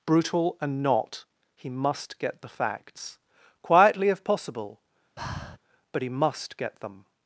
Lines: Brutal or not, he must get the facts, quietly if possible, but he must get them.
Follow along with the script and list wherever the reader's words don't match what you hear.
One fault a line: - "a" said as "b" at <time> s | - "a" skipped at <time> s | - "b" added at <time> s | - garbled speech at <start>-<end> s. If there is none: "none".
- "or" said as "and" at 0.6 s